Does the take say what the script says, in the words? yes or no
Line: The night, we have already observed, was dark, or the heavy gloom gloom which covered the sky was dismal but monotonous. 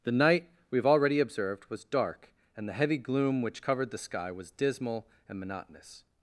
no